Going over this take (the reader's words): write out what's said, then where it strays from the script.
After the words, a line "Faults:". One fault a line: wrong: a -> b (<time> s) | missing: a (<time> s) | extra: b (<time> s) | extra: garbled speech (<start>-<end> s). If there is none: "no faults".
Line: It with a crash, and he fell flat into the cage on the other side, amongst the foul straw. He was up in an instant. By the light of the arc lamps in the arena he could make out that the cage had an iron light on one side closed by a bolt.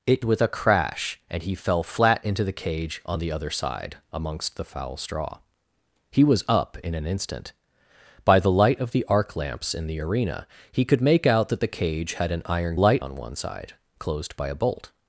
It with a crash, and he fell flat into the cage on the other side, amongst the foul straw. He was up in an instant. By the light of the arc lamps in the arena he could make out that the cage had an iron light on one side closed by a bolt.
Faults:
no faults